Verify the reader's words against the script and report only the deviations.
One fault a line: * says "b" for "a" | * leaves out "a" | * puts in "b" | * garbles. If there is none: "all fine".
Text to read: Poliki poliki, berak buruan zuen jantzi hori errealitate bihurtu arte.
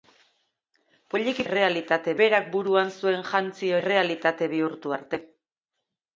* says "errealitate" for "poliki"
* leaves out "hori"